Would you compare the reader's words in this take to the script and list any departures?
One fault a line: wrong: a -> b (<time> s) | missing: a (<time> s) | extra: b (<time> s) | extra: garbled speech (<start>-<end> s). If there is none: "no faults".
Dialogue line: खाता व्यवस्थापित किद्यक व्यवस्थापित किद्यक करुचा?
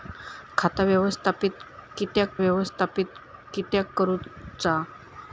no faults